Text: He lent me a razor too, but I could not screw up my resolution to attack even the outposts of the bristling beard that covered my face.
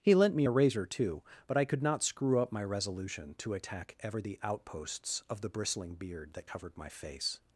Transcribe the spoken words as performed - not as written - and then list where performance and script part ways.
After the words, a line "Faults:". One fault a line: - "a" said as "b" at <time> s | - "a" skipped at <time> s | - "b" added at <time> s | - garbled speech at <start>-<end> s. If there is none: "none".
He lent me a razor too, but I could not screw up my resolution to attack ever the outposts of the bristling beard that covered my face.
Faults:
- "even" said as "ever" at 4.0 s